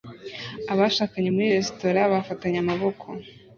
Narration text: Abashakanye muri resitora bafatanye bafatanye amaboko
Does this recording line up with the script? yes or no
no